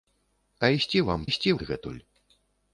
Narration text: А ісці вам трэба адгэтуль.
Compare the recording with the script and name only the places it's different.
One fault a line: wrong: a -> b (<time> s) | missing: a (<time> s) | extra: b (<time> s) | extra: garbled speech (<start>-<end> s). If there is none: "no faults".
wrong: трэба -> ісці (1.3 s)